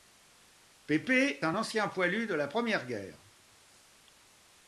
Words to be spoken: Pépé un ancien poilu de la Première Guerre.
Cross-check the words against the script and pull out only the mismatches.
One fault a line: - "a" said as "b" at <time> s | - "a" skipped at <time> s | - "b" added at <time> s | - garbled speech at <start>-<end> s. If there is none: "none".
none